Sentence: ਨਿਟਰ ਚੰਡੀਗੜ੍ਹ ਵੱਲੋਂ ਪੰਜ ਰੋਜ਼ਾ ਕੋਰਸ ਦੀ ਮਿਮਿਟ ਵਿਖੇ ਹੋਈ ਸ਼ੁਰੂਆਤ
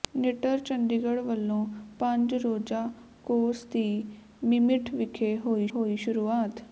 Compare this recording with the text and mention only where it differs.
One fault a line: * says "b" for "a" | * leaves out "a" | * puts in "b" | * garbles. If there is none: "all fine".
* puts in "ਹੋਈ"